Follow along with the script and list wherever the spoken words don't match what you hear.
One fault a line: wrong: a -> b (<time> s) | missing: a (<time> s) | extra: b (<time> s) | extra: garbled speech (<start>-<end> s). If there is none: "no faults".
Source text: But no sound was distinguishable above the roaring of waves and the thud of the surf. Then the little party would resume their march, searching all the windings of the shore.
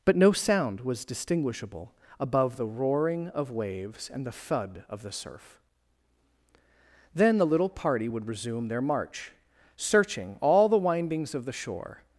no faults